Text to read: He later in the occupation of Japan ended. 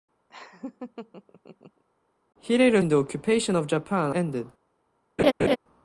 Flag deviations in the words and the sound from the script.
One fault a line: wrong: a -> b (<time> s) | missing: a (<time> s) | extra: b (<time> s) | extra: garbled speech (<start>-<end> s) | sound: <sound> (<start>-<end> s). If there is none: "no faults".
sound: laugh (0.3-1.8 s)
sound: laugh (5.2-5.6 s)